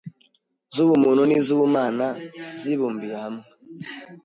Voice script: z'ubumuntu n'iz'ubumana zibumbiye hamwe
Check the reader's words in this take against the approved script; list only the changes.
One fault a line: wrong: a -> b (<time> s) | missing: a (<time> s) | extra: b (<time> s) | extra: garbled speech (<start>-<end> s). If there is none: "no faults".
no faults